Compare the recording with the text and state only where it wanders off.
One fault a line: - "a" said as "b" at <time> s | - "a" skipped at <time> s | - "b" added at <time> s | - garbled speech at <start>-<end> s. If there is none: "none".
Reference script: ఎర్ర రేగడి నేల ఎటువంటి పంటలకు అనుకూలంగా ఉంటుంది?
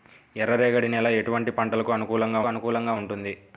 - "అనుకూలంగా" added at 2.5 s